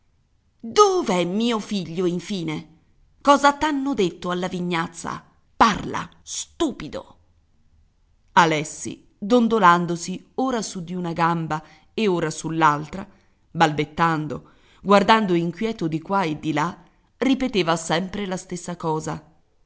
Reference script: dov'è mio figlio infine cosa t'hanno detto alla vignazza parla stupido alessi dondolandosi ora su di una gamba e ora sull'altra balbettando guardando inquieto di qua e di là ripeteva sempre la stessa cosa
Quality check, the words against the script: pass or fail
pass